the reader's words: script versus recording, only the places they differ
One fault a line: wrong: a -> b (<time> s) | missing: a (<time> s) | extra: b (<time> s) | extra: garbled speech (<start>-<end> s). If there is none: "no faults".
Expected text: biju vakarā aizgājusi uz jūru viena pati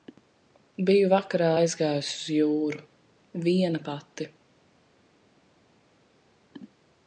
no faults